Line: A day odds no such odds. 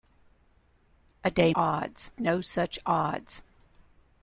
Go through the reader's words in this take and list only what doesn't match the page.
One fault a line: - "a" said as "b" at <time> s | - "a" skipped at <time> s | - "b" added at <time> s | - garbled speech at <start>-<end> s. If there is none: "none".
none